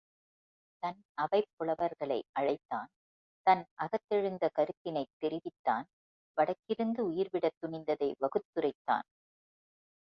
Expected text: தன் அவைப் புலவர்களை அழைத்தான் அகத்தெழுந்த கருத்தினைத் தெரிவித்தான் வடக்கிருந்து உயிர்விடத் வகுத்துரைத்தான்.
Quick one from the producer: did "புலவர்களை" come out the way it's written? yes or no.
yes